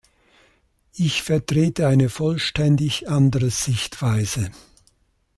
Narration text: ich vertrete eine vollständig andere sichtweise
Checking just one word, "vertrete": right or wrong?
right